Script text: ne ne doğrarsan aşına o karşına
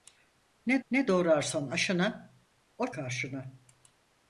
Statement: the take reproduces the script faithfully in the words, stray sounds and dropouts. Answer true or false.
true